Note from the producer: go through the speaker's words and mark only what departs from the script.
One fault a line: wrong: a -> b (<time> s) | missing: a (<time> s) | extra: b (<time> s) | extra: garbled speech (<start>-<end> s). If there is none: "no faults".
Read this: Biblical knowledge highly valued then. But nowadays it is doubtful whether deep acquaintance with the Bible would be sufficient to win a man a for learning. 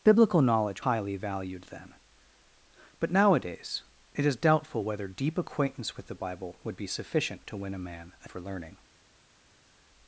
no faults